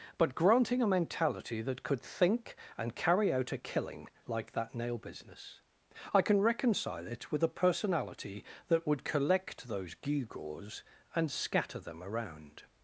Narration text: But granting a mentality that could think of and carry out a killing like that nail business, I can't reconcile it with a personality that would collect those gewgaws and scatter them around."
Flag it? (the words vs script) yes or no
yes